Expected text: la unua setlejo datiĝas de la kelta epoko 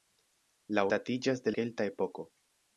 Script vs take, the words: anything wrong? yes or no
yes